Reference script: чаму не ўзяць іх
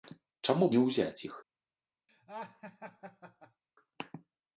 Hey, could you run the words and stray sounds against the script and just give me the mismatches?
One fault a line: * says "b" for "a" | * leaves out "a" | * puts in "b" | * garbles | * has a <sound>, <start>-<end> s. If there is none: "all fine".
* has a laugh, 2.1-3.6 s